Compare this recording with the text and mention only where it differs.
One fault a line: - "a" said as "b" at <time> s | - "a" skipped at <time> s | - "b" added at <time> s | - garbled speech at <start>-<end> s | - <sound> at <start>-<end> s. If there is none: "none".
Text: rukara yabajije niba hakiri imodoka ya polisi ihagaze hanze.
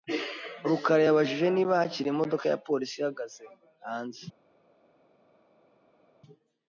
none